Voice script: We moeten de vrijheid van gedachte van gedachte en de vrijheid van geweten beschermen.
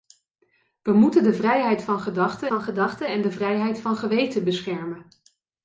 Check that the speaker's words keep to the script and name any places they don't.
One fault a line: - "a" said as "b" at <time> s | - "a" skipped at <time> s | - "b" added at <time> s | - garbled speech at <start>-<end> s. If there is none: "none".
none